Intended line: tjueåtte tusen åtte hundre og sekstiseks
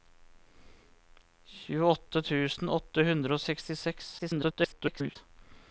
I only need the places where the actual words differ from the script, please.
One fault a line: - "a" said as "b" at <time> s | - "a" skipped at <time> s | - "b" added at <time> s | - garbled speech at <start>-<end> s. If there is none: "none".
- garbled speech at 4.2-5.2 s